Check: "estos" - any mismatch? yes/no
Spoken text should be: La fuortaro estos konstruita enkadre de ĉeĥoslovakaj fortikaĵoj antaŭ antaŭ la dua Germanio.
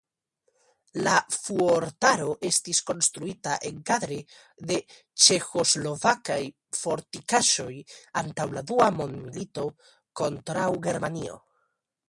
yes